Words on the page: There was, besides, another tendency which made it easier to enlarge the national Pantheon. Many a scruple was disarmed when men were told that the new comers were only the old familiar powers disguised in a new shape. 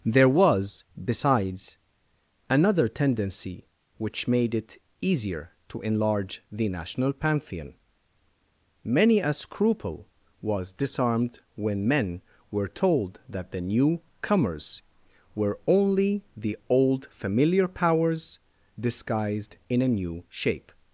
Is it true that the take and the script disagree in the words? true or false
false